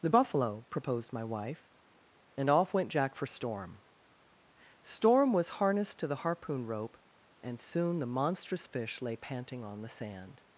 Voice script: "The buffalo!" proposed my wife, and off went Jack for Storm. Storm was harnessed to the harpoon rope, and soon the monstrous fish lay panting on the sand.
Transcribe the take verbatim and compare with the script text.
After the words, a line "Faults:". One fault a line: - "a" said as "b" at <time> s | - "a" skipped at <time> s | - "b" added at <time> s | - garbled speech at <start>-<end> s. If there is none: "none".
"The buffalo!" proposed my wife, and off went Jack for Storm. Storm was harnessed to the harpoon rope, and soon the monstrous fish lay panting on the sand.
Faults:
none